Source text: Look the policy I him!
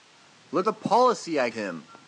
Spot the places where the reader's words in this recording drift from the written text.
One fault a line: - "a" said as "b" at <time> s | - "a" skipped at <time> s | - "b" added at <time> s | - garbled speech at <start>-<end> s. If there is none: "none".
none